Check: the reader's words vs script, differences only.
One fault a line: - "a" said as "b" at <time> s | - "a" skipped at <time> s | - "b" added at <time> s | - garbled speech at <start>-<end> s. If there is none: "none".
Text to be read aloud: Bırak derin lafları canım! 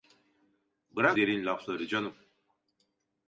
none